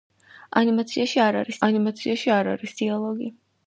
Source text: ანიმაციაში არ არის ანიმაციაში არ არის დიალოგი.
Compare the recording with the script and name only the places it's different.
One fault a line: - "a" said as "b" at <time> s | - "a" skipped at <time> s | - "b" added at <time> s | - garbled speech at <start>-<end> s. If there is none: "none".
none